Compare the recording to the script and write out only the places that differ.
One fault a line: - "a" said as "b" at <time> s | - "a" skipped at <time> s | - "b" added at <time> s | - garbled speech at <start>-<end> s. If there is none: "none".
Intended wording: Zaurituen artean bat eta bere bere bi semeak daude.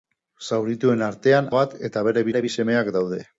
none